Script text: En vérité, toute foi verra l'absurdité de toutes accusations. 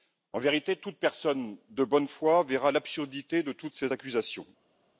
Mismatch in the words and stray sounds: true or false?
true